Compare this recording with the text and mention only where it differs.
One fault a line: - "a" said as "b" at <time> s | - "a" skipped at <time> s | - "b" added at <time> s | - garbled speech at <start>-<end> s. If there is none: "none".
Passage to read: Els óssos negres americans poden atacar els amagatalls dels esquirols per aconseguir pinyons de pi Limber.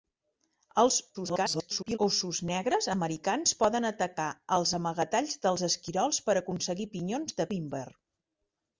- garbled speech at 1.1-2.0 s
- "pi" skipped at 7.5 s